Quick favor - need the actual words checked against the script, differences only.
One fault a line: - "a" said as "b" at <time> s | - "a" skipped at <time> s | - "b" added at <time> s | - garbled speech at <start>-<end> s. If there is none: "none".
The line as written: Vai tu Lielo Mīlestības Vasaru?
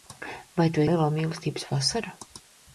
none